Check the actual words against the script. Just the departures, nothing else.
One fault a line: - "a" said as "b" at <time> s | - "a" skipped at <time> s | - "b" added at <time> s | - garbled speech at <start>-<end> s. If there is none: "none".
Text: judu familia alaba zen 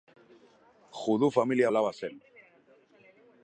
none